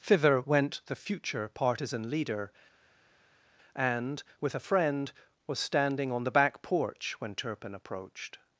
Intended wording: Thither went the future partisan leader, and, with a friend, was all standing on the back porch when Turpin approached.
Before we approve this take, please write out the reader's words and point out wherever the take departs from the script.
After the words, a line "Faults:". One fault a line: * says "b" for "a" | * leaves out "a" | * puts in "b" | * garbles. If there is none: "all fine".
Thither went the future partisan leader, and, with a friend, was standing on the back porch when Turpin approached.
Faults:
* leaves out "all"